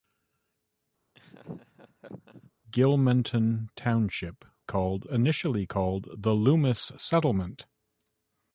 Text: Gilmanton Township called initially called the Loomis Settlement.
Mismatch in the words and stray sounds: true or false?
true